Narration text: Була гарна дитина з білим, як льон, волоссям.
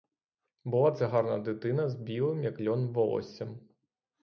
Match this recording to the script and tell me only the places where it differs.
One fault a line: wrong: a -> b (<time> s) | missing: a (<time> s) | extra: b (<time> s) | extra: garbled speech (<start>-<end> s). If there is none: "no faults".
extra: це (0.9 s)